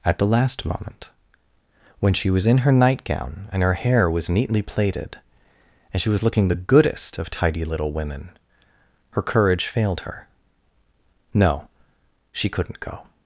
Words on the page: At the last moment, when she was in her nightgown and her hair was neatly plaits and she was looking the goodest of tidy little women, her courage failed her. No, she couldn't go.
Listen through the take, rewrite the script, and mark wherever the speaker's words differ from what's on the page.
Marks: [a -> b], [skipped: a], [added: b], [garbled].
At the last moment, when she was in her nightgown and her hair was neatly [plaits -> plaited] and she was looking the goodest of tidy little women, her courage failed her. No, she couldn't go.